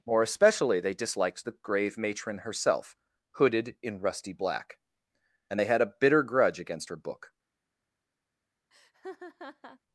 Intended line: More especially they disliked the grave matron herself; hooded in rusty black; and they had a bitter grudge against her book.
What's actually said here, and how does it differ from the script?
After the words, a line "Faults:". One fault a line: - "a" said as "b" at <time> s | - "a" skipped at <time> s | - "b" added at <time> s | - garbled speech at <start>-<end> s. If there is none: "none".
More especially they disliked the grave matron herself; hooded in rusty black; and they had a bitter grudge against her book.
Faults:
none